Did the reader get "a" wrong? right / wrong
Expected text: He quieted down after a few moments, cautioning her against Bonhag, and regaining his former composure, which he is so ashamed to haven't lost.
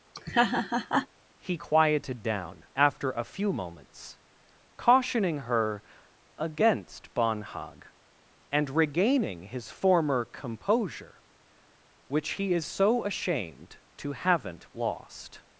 right